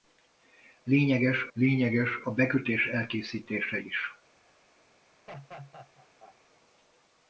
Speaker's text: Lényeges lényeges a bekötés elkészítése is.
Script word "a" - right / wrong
right